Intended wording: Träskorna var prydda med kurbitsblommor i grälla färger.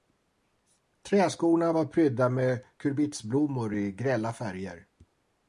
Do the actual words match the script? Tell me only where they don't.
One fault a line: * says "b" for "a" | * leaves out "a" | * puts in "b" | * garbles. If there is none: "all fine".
all fine